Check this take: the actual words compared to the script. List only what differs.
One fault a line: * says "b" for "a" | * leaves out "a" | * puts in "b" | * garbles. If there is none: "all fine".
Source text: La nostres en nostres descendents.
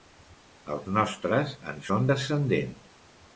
* says "Els" for "La"
* says "són" for "nostres"